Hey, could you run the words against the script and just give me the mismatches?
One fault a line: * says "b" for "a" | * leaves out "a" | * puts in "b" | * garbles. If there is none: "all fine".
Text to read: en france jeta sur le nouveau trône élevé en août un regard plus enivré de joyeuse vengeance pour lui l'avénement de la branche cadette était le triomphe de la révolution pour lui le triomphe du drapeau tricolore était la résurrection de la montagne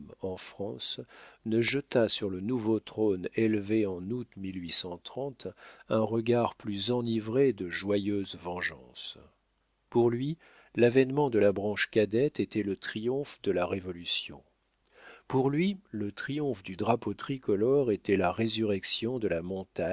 * puts in "ne"